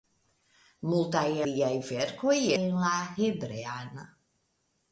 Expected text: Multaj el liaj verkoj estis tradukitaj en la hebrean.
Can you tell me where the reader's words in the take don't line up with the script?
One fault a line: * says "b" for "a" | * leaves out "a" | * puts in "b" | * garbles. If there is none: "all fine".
* leaves out "el"
* leaves out "estis tradukitaj"